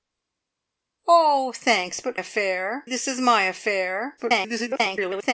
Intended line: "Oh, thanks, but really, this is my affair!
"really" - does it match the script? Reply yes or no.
no